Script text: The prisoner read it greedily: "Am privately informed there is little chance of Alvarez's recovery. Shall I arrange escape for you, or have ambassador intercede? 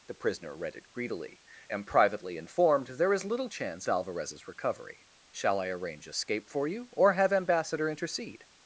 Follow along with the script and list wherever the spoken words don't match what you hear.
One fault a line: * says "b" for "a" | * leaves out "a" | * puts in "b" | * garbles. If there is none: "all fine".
* leaves out "of"